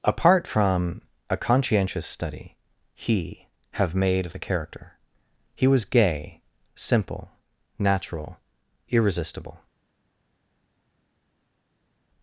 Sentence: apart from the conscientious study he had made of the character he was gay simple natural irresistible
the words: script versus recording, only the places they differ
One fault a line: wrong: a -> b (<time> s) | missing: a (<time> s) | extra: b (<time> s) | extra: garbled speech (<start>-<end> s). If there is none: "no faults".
wrong: the -> a (1.3 s)
wrong: had -> have (3.7 s)